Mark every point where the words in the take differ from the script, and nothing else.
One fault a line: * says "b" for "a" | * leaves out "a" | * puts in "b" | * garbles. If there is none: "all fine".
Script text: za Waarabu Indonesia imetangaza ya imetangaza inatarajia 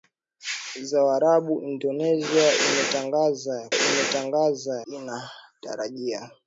all fine